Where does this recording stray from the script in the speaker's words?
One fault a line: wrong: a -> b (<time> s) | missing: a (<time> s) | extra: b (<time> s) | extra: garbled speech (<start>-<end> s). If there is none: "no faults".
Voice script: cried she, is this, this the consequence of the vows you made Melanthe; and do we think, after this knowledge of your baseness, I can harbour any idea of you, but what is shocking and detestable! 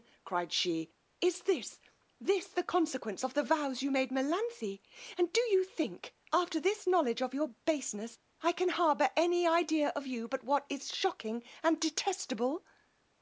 wrong: we -> you (5.4 s)